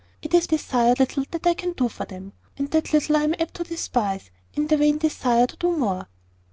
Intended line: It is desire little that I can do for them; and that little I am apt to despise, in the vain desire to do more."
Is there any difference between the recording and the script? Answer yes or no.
no